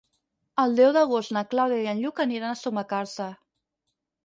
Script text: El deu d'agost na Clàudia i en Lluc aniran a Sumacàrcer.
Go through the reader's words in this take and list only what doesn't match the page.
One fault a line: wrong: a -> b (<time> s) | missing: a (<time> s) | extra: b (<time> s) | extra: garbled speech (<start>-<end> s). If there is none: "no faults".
no faults